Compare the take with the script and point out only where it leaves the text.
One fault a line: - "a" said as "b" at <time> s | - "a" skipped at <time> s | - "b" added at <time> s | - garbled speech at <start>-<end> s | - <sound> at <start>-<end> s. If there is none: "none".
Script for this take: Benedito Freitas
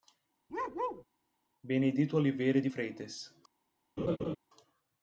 - bark at 0.5-1.0 s
- "Oliveira de" added at 2.2 s
- laugh at 4.0-4.4 s